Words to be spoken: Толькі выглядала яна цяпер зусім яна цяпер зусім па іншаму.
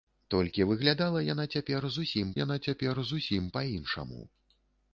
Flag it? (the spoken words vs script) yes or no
no